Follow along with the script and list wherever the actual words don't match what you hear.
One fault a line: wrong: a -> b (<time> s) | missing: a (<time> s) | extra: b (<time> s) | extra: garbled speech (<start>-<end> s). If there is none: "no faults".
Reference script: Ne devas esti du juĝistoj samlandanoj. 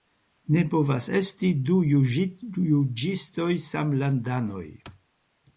wrong: devas -> povas (0.7 s)